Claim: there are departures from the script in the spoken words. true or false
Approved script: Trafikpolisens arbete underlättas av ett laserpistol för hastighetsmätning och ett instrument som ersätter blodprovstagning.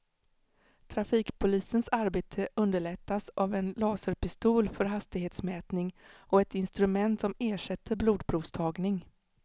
true